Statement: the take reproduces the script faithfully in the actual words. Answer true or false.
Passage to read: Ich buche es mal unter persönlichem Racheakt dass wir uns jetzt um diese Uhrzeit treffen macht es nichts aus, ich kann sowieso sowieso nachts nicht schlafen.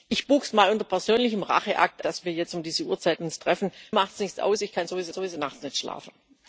true